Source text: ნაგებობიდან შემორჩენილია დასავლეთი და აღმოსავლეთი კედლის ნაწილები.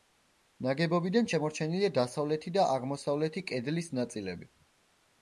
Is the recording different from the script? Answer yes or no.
no